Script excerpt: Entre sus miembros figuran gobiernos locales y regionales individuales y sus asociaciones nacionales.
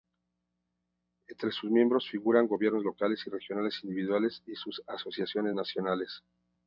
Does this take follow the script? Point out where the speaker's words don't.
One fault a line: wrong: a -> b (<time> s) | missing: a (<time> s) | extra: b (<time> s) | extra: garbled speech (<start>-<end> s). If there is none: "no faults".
no faults